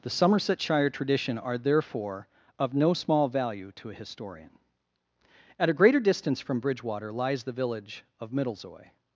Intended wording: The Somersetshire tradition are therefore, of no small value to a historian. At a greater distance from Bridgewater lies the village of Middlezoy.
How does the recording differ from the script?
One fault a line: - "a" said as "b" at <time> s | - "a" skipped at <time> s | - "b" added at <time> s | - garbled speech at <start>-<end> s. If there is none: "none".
none